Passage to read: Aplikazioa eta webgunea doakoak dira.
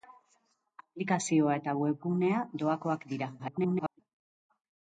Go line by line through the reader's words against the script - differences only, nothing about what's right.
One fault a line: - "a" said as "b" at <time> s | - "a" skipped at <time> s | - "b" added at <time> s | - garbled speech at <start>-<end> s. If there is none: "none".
- garbled speech at 3.4-4.0 s